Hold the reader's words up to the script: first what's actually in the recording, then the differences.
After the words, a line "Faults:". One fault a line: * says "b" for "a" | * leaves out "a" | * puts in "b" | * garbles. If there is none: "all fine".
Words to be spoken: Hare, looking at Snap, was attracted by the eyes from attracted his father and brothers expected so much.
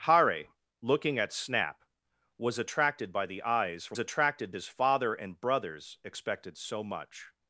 Hare, looking at Snap, was attracted by the eyes from attracted his father and brothers expected so much.
Faults:
all fine